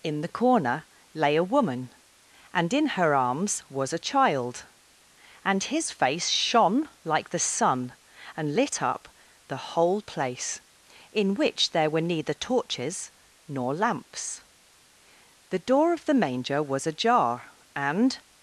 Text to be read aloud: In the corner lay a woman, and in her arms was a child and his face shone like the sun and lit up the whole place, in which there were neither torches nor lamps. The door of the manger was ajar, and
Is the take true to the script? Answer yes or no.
yes